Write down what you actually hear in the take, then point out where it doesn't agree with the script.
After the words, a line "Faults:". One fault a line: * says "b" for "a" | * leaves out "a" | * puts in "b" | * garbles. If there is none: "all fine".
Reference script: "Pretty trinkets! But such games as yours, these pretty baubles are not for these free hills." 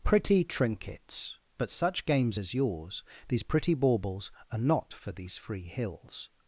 "Pretty trinkets! But such games as yours, these pretty baubles are not for these free hills."
Faults:
all fine